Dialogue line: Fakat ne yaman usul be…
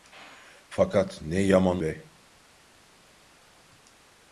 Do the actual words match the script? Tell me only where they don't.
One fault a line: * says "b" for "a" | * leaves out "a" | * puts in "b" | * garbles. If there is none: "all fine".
* leaves out "usul"